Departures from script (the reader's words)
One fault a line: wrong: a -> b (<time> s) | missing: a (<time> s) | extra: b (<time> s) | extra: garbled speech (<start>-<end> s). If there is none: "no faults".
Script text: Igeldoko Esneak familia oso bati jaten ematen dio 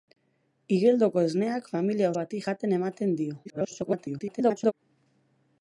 missing: oso (2.1 s)
extra: garbled speech (3.4-4.7 s)